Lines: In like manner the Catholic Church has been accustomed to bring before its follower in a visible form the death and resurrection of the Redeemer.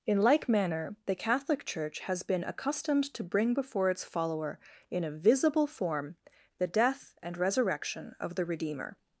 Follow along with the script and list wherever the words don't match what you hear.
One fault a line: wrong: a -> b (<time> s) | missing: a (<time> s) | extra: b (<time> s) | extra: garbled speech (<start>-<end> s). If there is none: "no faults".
no faults